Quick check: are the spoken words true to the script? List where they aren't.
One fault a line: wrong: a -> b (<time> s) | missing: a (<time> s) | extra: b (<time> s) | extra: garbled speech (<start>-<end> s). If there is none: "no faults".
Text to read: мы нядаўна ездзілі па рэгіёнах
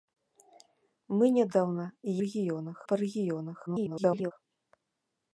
wrong: ездзілі -> рэгіёнах (2.2 s)
extra: garbled speech (3.7-4.3 s)